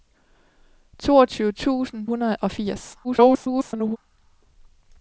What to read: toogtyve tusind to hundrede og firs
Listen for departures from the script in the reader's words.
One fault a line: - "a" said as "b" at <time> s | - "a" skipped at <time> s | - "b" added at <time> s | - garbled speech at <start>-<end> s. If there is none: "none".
- "to" skipped at 2.1 s
- garbled speech at 3.0-4.0 s